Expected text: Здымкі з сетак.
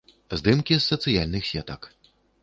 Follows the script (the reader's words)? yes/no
no